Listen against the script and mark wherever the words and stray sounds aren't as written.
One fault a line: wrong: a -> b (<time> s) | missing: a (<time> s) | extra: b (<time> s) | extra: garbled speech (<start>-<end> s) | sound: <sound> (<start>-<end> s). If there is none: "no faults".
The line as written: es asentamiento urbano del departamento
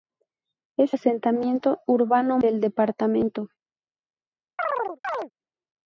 sound: chirp (4.6-5.3 s)